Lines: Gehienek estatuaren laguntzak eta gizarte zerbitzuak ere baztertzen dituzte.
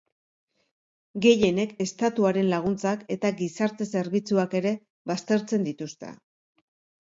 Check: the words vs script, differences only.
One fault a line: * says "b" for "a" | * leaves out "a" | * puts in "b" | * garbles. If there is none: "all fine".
all fine